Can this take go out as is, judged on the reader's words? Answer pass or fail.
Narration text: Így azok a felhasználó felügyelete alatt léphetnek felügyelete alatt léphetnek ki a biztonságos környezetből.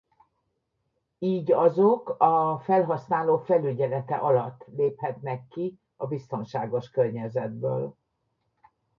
fail